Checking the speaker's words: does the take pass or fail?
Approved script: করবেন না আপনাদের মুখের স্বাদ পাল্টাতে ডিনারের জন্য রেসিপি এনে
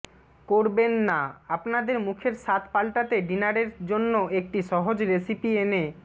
fail